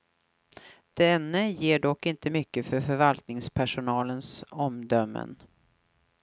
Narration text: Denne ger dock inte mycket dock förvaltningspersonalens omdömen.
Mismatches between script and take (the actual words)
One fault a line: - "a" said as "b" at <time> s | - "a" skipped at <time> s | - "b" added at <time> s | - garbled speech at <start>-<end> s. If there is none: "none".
- "dock" said as "för" at 2.7 s